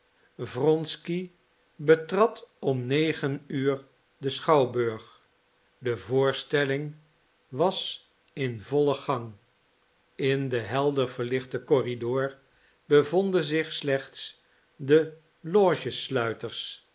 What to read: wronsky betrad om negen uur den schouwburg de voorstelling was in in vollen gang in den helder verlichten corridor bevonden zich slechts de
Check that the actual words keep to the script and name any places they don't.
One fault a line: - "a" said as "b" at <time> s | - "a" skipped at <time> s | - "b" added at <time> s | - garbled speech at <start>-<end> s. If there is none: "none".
- "in" skipped at 8.6 s